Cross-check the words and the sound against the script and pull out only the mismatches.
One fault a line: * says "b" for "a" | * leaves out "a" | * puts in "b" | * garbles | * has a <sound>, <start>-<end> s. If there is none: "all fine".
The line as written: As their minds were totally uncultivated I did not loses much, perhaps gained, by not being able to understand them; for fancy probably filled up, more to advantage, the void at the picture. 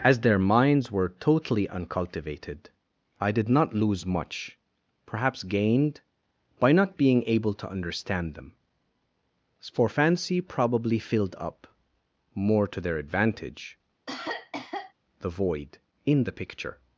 * says "lose" for "loses"
* puts in "their"
* has a cough, 14.1-14.9 s
* says "in" for "at"